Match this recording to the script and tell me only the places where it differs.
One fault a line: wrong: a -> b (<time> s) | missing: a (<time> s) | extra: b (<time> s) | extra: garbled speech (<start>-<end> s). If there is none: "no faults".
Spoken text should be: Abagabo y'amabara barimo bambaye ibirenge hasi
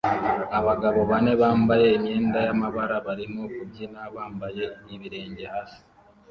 extra: bane bambaye imyenda (1.1 s)
extra: kubyina (3.5 s)